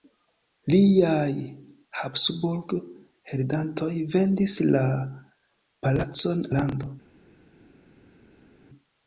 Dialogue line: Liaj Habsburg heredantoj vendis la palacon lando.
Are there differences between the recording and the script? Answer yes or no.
no